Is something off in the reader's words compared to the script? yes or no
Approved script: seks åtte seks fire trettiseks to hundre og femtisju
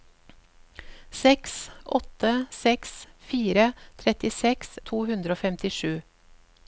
no